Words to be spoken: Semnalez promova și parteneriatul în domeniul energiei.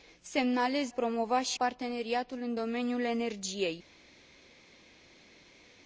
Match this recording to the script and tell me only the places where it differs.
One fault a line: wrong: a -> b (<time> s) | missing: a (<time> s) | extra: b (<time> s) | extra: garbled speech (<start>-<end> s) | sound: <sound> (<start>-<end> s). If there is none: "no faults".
no faults